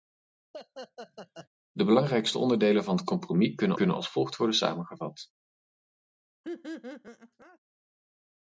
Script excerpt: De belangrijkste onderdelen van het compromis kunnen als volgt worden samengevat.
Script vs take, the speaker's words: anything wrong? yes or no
yes